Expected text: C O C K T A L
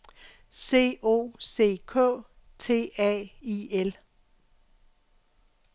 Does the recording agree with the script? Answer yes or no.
no